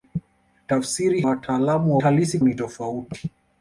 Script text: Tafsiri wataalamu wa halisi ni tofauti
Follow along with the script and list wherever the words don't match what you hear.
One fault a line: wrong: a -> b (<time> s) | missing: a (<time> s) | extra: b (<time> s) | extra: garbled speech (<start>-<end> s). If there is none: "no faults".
no faults